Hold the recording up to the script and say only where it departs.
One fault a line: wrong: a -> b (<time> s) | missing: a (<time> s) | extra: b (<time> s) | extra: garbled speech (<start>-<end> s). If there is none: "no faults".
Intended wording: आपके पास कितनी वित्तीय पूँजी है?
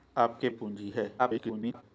missing: पास कितनी वित्तीय (0.5 s)
extra: garbled speech (1.2-1.8 s)